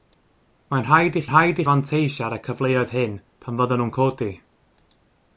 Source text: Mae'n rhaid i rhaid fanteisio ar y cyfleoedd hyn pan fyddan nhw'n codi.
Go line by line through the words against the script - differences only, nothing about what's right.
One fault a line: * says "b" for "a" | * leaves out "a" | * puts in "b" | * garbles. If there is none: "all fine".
all fine